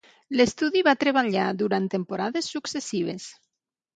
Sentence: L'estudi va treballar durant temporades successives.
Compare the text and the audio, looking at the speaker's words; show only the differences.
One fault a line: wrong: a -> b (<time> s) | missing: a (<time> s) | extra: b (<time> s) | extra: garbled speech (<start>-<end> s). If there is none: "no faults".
no faults